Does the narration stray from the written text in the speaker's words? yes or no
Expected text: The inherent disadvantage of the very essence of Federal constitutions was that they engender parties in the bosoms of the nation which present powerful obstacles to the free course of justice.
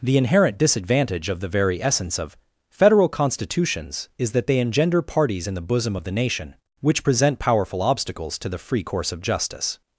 yes